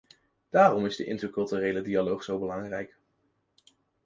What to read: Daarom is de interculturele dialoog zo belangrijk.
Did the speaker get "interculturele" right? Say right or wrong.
right